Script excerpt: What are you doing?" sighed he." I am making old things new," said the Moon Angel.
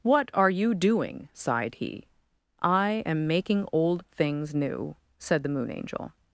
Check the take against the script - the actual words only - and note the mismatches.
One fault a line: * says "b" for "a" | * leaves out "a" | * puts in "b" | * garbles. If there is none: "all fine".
all fine